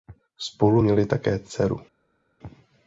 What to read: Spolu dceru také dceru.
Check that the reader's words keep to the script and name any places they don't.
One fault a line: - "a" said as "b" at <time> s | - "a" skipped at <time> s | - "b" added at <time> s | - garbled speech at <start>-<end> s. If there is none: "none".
- "dceru" said as "měli" at 0.8 s